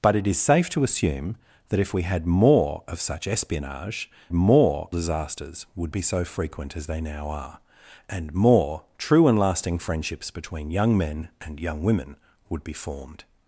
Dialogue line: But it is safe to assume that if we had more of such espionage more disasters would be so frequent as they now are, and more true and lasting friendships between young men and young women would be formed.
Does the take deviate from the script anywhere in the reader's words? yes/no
no